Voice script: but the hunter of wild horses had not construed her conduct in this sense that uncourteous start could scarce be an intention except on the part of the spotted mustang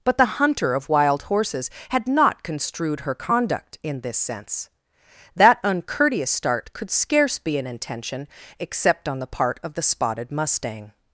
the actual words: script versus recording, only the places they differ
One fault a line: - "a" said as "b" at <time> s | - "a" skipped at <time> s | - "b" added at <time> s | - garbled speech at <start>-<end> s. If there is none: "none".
none